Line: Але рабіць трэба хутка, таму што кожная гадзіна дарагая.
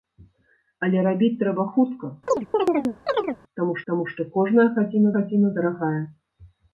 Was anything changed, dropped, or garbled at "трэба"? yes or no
no